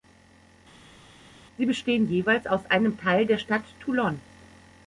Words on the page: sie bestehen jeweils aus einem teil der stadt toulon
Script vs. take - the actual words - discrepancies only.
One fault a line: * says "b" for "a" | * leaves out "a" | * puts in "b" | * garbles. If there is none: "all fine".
all fine